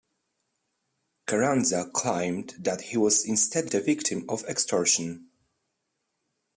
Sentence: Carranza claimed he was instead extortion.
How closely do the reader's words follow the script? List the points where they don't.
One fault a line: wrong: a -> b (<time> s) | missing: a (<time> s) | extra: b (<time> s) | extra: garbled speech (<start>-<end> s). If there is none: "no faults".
extra: that (2.6 s)
extra: the victim of (3.6 s)